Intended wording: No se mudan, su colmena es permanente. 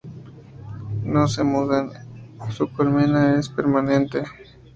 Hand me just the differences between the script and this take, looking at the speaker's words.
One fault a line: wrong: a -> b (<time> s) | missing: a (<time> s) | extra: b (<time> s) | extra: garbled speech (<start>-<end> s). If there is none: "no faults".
no faults